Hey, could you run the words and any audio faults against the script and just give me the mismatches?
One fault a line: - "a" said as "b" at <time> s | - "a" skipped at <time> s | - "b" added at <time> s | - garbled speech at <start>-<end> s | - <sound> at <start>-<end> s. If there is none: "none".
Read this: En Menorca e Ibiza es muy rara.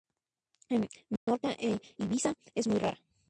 - dropout at 1.2-1.3 s